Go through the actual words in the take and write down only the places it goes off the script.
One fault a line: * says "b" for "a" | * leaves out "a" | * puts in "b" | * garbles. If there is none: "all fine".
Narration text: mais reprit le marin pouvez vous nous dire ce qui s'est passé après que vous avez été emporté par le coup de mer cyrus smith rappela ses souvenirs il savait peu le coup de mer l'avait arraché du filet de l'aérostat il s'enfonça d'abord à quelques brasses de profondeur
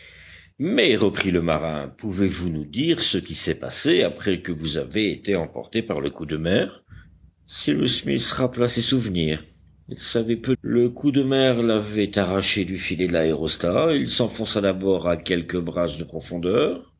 all fine